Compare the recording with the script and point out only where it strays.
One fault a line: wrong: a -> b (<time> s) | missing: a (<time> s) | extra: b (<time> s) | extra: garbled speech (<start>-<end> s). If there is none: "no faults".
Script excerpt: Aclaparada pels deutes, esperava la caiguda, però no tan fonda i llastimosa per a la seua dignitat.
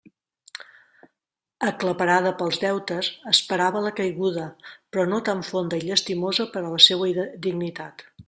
no faults